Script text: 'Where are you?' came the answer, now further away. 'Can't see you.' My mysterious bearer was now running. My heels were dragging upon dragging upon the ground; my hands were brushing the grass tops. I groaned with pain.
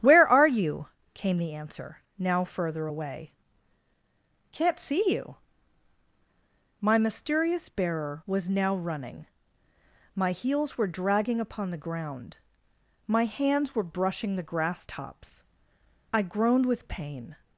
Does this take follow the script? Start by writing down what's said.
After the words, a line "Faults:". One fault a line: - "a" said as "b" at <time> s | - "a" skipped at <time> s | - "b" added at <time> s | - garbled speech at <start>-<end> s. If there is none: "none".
'Where are you?' came the answer, now further away. 'Can't see you.' My mysterious bearer was now running. My heels were dragging upon the ground; my hands were brushing the grass tops. I groaned with pain.
Faults:
- "dragging upon" skipped at 11.7 s